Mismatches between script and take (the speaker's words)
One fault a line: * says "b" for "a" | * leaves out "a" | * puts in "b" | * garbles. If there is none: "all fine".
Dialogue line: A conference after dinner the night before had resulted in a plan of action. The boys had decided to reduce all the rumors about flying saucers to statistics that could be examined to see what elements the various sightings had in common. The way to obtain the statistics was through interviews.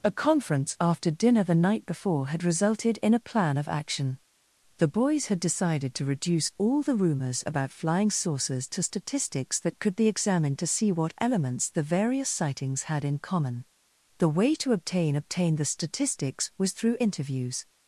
* puts in "obtain"